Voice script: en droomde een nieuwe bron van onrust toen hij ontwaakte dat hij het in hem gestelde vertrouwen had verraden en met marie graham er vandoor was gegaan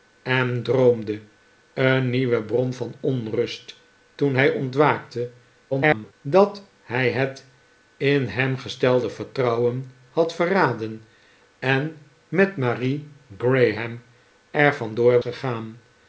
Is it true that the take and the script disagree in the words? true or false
true